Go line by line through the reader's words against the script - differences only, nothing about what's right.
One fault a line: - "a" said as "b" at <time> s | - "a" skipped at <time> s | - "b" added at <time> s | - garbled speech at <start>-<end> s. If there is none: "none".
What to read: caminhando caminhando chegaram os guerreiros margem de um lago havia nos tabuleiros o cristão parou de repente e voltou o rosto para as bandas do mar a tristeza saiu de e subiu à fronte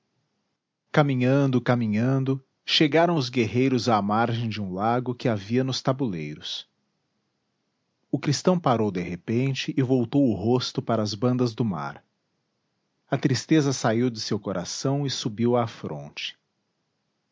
- "à" added at 3.9 s
- "que" added at 5.1 s
- "seu coração" added at 14.2 s